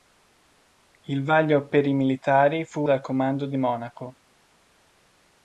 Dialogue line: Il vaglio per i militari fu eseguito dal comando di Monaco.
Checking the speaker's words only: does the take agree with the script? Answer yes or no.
no